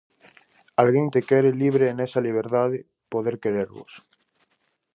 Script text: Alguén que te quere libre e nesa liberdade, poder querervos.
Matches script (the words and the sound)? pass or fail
fail